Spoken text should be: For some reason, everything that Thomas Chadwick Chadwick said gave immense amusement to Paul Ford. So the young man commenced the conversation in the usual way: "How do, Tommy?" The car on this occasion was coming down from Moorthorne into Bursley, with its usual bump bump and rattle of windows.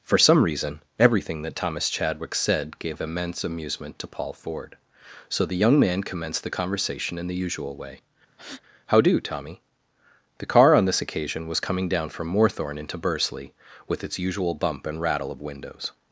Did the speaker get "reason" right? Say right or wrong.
right